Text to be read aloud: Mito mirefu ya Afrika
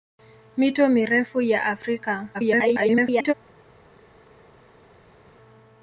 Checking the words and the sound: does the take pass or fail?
fail